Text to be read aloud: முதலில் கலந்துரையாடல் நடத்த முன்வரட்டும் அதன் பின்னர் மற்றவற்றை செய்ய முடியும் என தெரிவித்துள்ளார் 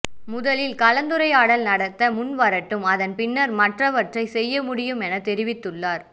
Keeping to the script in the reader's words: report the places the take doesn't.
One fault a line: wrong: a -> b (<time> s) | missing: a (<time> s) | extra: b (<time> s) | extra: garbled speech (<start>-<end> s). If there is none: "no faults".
no faults